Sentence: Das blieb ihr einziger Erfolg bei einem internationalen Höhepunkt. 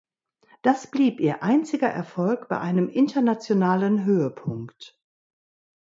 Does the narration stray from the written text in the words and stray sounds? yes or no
no